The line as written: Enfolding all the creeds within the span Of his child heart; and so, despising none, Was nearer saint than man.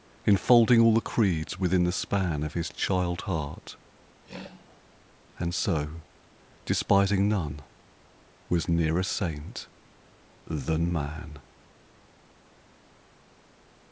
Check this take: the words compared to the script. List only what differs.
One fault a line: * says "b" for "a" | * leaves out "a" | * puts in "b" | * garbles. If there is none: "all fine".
all fine